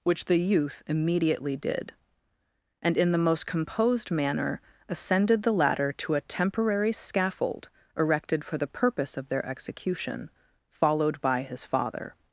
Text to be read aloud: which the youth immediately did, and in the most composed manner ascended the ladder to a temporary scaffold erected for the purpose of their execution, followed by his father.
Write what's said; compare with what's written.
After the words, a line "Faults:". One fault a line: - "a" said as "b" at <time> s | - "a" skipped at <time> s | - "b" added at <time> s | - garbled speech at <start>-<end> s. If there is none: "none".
which the youth immediately did, and in the most composed manner ascended the ladder to a temporary scaffold erected for the purpose of their execution, followed by his father.
Faults:
none